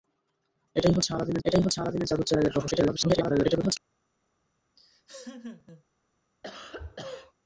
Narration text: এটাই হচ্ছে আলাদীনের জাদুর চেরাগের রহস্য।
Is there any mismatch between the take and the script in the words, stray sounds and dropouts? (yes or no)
yes